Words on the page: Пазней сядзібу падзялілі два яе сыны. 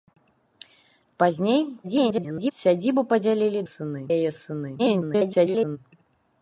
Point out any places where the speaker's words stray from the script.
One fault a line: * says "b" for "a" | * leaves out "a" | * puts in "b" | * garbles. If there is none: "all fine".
* garbles
* says "сыны" for "два"
* garbles